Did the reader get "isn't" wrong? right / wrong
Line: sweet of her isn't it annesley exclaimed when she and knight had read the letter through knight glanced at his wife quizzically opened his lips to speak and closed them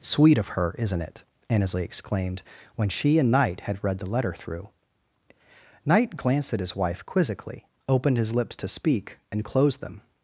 right